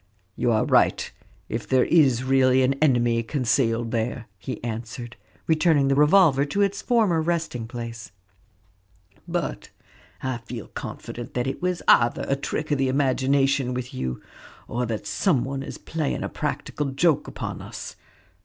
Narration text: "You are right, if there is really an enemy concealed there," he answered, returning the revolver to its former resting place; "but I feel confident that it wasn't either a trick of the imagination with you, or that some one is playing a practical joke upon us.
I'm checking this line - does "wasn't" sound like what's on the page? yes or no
no